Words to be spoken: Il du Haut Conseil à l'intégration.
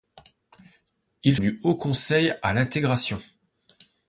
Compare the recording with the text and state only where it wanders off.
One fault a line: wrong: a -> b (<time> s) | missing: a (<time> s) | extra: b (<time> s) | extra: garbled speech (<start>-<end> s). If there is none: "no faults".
no faults